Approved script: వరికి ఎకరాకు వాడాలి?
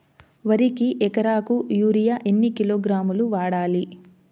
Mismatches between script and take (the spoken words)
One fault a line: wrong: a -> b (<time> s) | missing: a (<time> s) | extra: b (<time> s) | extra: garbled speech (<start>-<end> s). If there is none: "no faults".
extra: యూరియా ఎన్ని కిలోగ్రాములు (1.7 s)